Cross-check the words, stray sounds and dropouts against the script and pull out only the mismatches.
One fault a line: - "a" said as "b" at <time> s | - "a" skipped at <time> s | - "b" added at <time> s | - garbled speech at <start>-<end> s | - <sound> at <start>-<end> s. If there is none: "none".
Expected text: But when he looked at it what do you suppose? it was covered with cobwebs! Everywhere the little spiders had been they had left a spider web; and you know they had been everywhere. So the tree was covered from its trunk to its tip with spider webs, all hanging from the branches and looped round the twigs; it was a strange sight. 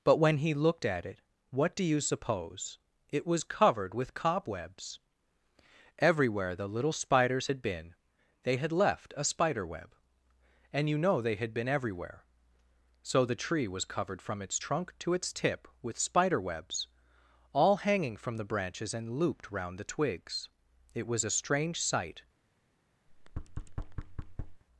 - thud at 23.1-24.6 s